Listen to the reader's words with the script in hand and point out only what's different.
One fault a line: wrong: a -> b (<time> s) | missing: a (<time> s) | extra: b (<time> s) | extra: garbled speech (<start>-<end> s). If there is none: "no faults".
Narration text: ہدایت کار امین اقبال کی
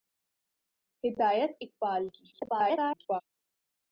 missing: کار امین (1.5 s)
extra: garbled speech (2.3-3.2 s)